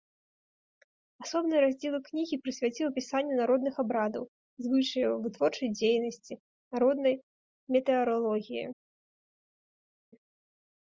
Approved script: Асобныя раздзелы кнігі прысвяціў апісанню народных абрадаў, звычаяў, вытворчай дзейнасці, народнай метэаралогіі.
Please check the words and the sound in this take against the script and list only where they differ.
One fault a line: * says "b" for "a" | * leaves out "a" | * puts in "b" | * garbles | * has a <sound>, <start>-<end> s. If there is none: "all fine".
all fine